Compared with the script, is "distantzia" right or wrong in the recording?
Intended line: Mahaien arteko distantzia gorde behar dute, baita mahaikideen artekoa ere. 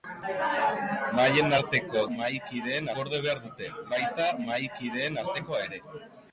wrong